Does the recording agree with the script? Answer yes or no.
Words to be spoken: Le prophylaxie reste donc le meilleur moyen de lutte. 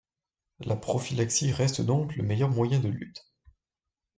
no